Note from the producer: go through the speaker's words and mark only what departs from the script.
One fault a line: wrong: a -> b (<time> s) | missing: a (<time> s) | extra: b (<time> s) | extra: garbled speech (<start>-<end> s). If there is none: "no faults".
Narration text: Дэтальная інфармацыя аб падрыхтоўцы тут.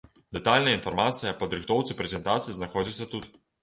extra: прэзентацыі знаходзіцца (2.0 s)